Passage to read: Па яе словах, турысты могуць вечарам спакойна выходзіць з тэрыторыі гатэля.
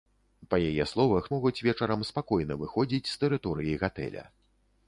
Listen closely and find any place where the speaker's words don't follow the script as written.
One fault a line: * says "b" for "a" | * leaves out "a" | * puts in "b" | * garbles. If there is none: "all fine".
* leaves out "турысты"